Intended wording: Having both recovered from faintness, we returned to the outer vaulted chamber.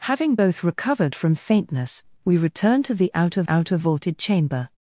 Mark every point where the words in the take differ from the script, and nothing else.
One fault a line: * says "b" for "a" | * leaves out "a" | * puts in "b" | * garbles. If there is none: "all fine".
* puts in "outer"